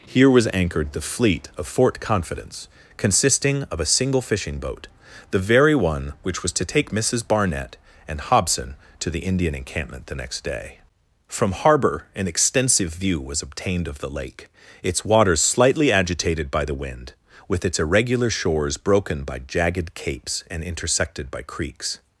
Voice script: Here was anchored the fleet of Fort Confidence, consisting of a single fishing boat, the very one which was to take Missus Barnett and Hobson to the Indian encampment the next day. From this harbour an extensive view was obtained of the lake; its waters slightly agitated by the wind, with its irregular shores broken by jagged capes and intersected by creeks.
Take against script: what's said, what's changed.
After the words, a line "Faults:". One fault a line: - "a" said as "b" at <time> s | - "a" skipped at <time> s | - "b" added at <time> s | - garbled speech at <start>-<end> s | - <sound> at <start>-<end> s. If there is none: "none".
Here was anchored the fleet of Fort Confidence, consisting of a single fishing boat, the very one which was to take Missus Barnett and Hobson to the Indian encampment the next day. From harbour an extensive view was obtained of the lake; its waters slightly agitated by the wind, with its irregular shores broken by jagged capes and intersected by creeks.
Faults:
- "this" skipped at 11.5 s